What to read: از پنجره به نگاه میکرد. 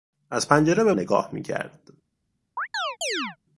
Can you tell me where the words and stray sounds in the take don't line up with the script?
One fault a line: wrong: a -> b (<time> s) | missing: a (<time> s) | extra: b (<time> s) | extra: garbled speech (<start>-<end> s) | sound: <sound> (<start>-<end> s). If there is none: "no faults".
sound: chirp (2.6-3.4 s)